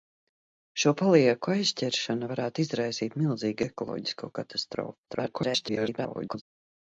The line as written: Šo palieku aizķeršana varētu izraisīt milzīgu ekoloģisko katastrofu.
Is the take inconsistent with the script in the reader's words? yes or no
yes